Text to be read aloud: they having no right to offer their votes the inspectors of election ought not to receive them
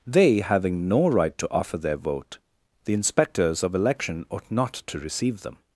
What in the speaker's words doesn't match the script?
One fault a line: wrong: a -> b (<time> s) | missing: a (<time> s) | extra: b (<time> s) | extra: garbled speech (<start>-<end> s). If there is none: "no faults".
wrong: votes -> vote (2.0 s)